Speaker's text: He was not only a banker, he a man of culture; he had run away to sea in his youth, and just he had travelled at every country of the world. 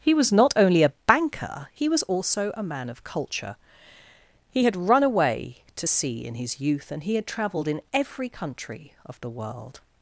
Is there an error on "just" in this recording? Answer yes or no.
yes